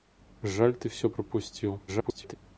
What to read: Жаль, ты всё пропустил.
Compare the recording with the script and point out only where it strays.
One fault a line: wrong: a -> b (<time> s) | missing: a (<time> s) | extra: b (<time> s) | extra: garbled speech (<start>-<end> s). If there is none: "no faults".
extra: garbled speech (1.9-2.4 s)